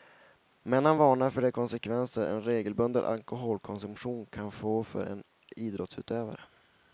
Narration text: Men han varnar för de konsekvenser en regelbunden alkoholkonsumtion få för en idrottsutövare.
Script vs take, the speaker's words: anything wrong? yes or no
yes